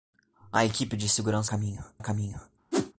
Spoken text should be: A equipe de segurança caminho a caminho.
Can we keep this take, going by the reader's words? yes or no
yes